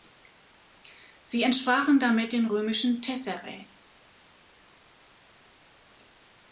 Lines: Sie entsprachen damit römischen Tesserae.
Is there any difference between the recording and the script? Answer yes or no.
yes